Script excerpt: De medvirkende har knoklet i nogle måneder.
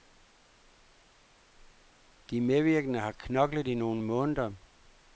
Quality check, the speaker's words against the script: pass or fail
pass